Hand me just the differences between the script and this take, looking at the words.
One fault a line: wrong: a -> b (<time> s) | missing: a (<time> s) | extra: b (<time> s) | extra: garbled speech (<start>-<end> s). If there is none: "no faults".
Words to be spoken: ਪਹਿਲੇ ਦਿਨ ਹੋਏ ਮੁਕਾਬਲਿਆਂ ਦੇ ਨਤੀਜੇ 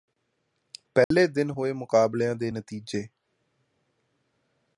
no faults